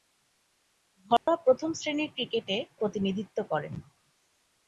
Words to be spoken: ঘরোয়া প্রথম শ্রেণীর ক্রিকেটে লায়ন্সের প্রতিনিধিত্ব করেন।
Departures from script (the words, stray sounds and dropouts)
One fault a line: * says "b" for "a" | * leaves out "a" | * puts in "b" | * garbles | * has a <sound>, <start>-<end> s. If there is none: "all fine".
* has a dropout, 1.2-1.3 s
* leaves out "লায়ন্সের"